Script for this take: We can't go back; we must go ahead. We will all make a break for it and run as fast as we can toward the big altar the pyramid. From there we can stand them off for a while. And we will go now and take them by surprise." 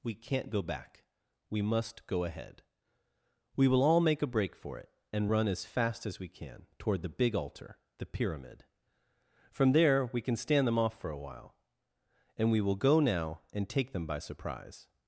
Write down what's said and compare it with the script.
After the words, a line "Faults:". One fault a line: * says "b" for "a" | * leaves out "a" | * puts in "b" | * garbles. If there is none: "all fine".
We can't go back; we must go ahead. We will all make a break for it and run as fast as we can toward the big altar the pyramid. From there we can stand them off for a while. And we will go now and take them by surprise."
Faults:
all fine